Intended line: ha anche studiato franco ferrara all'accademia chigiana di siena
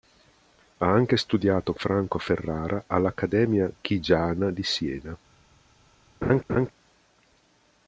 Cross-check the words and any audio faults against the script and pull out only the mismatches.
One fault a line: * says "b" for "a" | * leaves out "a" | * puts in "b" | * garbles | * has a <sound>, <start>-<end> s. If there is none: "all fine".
* has a laugh, 6.2-6.7 s